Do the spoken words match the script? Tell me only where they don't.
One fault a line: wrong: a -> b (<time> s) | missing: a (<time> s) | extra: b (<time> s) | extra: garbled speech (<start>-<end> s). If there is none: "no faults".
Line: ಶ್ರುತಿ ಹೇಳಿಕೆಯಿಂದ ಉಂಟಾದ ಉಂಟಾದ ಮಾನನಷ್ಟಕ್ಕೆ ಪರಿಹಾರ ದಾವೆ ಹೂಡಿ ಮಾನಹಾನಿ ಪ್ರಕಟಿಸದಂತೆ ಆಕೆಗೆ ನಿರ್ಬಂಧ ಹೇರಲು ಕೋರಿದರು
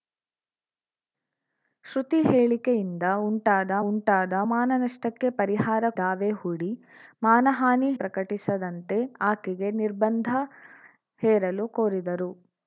no faults